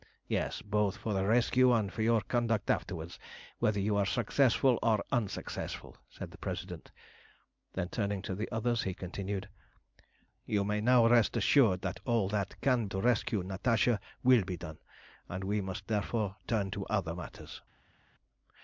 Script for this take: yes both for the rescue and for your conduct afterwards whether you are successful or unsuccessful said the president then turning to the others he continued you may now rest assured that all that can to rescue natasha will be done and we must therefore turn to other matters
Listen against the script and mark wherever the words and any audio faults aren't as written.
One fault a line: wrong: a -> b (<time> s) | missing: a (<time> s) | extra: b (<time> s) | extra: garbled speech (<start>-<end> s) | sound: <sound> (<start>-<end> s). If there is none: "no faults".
no faults